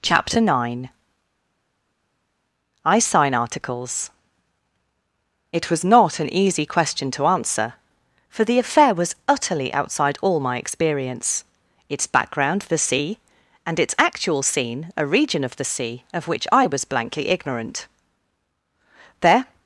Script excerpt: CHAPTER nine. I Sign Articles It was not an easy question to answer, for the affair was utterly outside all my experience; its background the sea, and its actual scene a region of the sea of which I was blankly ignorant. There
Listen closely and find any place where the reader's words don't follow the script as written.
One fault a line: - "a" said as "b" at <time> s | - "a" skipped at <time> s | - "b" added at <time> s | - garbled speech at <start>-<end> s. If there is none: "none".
none